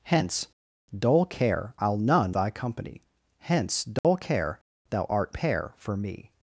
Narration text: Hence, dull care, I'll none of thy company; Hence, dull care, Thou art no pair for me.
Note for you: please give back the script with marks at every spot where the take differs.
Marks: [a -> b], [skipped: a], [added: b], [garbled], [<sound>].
Hence, dull care, I'll none [skipped: of] thy company; Hence, dull [dropout] care, Thou art [skipped: no] pair for me.